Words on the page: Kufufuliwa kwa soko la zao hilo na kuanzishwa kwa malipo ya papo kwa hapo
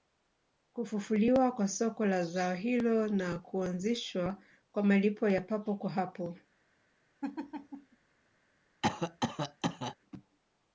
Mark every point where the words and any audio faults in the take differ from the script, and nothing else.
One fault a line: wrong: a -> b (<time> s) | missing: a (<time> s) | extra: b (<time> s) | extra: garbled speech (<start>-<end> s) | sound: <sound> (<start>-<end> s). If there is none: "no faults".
sound: laugh (7.2-8.0 s)
sound: cough (8.8-10.0 s)